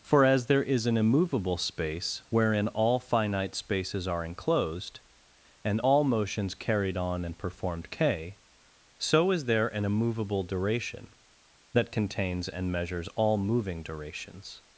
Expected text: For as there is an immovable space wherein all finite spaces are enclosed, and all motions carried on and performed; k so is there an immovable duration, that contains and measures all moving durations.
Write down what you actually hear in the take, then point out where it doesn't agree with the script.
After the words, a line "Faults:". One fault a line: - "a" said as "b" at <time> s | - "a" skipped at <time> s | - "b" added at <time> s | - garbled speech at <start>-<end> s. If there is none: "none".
For as there is an immovable space wherein all finite spaces are enclosed, and all motions carried on and performed; k so is there an immovable duration, that contains and measures all moving durations.
Faults:
none